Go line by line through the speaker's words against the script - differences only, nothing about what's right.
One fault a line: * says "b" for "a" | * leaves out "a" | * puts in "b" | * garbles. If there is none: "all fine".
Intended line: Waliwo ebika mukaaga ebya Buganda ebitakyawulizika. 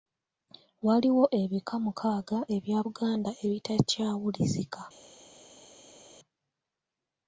all fine